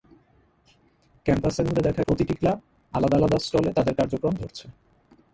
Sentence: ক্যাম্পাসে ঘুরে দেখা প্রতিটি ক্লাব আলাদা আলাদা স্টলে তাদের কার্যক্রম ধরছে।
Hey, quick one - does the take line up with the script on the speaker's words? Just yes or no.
yes